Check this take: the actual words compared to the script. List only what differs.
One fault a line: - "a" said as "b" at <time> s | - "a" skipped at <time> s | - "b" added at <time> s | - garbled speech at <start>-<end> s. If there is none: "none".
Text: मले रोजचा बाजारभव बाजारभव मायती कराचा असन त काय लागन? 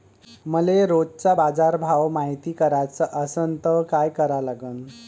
- "बाजारभव" skipped at 2.1 s
- "करा" added at 4.1 s